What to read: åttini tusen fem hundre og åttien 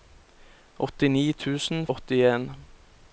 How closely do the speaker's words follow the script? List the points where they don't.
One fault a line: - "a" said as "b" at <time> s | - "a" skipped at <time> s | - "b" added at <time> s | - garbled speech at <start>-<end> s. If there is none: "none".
- "fem hundre og" skipped at 1.9 s